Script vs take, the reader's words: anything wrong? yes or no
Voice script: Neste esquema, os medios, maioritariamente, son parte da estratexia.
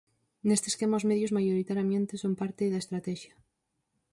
no